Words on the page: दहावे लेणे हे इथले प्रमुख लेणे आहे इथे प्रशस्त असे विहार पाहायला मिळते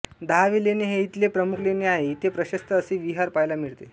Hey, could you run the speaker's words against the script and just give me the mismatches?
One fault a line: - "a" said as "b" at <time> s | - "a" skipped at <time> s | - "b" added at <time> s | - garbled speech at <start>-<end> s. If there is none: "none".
none